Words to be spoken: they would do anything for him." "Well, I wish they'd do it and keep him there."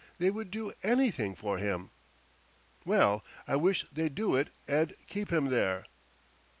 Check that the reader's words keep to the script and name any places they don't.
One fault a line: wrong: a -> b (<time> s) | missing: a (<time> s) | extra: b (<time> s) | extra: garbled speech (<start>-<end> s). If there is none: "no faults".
no faults